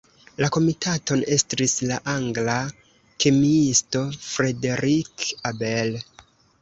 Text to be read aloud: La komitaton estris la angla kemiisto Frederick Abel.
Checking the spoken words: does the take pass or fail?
pass